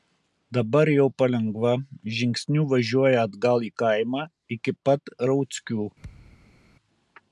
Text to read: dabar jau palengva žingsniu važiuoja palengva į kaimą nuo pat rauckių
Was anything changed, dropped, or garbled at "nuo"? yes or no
yes